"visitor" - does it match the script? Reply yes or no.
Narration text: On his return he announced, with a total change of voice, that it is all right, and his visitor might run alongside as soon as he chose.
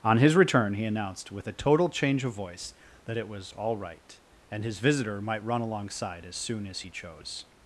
yes